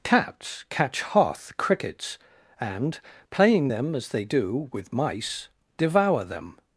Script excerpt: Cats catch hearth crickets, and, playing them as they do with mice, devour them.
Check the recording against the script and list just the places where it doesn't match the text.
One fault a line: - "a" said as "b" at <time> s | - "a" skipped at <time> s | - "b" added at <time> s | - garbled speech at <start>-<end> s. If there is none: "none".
none